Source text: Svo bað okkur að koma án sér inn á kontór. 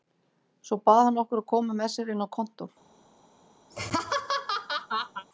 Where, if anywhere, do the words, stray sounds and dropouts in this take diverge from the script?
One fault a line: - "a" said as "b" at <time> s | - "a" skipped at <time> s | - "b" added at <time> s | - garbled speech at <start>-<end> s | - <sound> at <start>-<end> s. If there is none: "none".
- "hann" added at 1.1 s
- "án" said as "með" at 1.8 s
- laugh at 3.7-5.3 s